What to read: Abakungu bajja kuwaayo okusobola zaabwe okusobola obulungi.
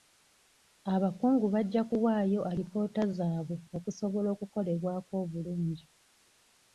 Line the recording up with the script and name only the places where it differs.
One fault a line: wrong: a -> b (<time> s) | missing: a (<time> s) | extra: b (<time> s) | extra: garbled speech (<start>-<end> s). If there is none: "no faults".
wrong: okusobola -> alipoota (2.5 s)
extra: okukolebwako (4.4 s)